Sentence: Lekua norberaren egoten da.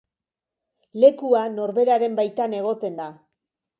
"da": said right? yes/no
yes